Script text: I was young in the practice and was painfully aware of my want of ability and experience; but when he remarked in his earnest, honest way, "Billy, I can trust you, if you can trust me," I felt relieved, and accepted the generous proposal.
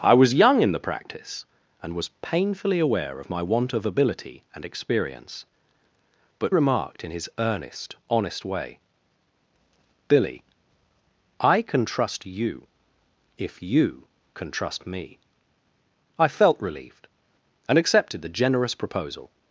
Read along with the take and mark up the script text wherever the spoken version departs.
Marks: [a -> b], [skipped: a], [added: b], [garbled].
I was young in the practice and was painfully aware of my want of ability and experience; but [skipped: when he] remarked in his earnest, honest way, "Billy, I can trust you, if you can trust me," I felt relieved, and accepted the generous proposal.